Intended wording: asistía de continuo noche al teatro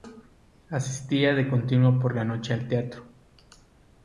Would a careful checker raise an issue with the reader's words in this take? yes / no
yes